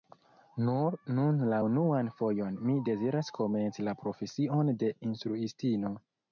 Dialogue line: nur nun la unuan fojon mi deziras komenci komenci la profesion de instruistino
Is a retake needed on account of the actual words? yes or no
yes